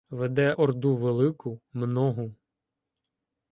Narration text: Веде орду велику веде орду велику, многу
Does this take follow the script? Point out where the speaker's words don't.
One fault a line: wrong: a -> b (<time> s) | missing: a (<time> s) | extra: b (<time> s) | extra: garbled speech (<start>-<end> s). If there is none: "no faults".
missing: веде орду велику (1.6 s)